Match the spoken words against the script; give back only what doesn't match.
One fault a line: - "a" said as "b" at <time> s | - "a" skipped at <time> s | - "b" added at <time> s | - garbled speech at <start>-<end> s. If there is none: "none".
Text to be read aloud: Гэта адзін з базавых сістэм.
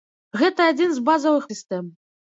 none